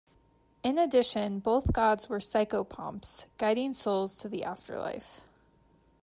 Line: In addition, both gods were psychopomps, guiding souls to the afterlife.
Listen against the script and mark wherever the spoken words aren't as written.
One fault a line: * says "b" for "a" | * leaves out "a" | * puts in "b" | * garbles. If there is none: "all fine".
all fine